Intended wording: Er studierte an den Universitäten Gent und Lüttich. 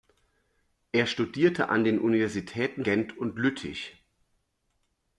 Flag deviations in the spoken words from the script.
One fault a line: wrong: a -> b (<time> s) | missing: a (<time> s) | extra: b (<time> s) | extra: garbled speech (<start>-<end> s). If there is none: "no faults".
no faults